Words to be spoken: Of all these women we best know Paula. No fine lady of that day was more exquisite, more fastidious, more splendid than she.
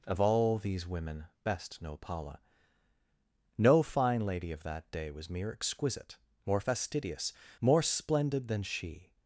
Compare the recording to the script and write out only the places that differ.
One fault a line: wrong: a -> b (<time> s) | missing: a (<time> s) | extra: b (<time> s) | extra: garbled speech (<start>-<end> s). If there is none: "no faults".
missing: we (1.2 s)
wrong: more -> mere (5.3 s)